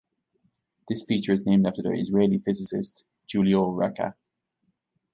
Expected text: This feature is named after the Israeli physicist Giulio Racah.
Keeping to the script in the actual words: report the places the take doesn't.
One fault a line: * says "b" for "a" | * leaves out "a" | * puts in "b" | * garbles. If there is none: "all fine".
all fine